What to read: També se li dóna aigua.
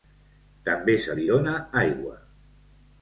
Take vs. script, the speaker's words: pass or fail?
pass